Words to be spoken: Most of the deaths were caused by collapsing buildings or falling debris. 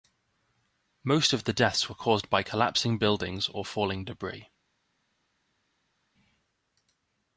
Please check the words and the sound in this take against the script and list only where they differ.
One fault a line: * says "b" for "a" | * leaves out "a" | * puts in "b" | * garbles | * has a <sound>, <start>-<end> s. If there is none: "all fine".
all fine